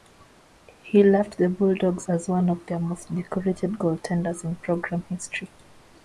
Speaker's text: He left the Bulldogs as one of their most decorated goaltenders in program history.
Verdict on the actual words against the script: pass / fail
pass